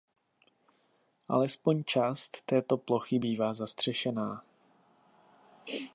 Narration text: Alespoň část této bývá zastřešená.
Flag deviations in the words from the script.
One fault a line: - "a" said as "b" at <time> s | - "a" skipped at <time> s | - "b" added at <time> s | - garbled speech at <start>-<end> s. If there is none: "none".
- "plochy" added at 2.8 s